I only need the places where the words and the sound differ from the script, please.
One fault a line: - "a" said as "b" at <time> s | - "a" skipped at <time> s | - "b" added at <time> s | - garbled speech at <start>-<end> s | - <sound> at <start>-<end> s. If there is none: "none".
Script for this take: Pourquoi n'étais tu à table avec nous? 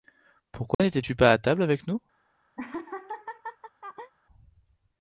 - dropout at 0.7-0.8 s
- "pas" added at 1.2 s
- laugh at 2.6-4.1 s